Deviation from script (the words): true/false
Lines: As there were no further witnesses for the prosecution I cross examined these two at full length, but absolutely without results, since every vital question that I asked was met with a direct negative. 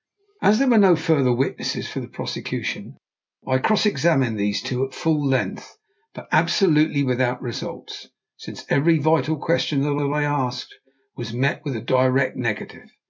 true